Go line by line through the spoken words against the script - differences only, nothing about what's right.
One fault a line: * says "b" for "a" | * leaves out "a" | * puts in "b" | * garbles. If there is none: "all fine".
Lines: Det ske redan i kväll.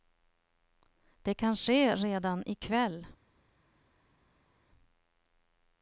* puts in "kan"